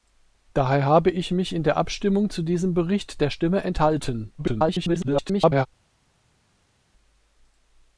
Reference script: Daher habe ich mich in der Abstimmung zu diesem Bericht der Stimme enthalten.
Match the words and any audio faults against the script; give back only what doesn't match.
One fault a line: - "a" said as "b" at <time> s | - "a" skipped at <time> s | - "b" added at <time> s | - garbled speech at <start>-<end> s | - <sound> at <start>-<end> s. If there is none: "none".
- garbled speech at 4.4-5.7 s